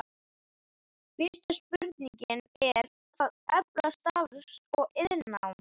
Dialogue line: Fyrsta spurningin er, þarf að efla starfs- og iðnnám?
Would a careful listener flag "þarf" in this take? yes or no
yes